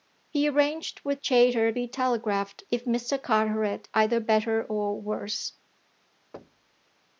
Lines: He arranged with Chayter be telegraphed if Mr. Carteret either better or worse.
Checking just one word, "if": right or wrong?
right